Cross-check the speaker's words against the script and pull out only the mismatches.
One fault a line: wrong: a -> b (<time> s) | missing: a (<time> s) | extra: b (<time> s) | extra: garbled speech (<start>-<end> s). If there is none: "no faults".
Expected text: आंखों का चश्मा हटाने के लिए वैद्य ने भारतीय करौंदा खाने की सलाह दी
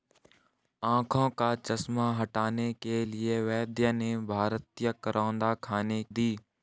missing: की सलाह (6.0 s)